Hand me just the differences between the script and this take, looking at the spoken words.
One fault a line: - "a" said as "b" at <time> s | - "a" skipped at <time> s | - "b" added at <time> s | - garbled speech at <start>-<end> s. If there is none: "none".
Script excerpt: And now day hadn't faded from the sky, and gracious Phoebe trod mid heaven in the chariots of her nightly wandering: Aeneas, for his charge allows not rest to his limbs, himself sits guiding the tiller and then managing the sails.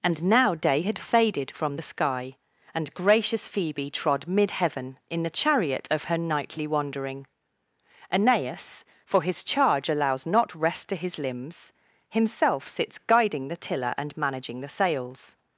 - "hadn't" said as "had" at 0.8 s
- "chariots" said as "chariot" at 5.3 s
- "then" skipped at 14.2 s